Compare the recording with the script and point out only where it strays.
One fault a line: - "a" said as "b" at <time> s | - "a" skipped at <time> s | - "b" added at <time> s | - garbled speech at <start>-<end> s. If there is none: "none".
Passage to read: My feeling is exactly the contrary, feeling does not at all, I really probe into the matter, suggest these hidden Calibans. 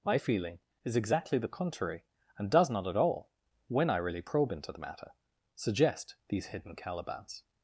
- "feeling" said as "and" at 2.4 s
- "when" added at 3.7 s